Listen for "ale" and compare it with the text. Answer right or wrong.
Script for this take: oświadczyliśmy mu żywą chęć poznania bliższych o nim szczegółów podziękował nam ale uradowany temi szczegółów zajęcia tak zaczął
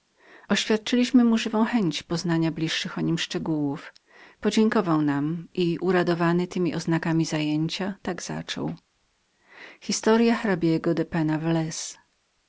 wrong